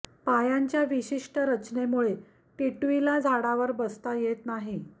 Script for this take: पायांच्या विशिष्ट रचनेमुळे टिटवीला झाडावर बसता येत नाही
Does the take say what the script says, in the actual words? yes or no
yes